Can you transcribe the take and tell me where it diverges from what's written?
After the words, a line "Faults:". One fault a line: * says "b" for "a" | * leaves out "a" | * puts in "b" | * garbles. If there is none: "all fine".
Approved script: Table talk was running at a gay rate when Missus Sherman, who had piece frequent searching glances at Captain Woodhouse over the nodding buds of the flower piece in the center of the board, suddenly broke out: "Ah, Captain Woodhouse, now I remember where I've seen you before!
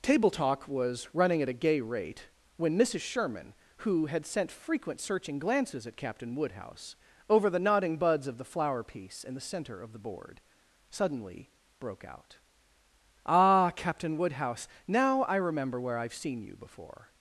Table talk was running at a gay rate when Missus Sherman, who had sent frequent searching glances at Captain Woodhouse over the nodding buds of the flower piece in the center of the board, suddenly broke out: "Ah, Captain Woodhouse, now I remember where I've seen you before!
Faults:
* says "sent" for "piece"